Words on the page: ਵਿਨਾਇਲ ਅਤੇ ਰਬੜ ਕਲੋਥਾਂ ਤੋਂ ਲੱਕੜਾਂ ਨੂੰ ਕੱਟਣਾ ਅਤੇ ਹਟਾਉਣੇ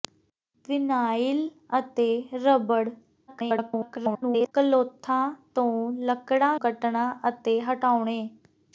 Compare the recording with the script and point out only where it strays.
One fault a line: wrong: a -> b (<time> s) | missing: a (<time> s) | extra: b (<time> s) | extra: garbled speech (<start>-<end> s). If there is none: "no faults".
extra: garbled speech (3.3-4.5 s)
missing: ਨੂੰ (6.6 s)